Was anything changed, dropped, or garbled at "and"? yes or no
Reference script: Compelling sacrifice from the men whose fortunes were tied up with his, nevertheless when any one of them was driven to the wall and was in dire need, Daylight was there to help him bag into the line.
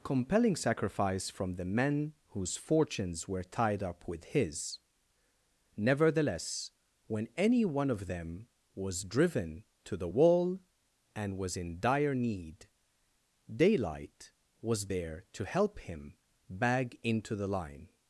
no